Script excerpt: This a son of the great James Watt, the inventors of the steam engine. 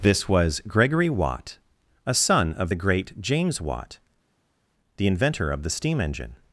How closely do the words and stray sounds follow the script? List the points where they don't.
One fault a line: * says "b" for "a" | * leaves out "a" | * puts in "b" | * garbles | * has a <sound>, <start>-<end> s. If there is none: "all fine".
* puts in "was Gregory Watt"
* says "inventor" for "inventors"